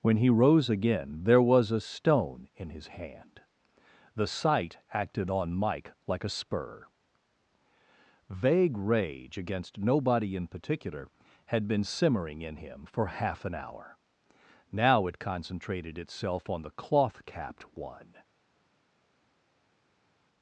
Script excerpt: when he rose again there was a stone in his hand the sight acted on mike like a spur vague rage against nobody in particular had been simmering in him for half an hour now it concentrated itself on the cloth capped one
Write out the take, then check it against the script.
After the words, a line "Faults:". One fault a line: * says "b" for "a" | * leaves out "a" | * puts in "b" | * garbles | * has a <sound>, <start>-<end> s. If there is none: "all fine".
when he rose again there was a stone in his hand the sight acted on mike like a spur vague rage against nobody in particular had been simmering in him for half an hour now it concentrated itself on the cloth capped one
Faults:
all fine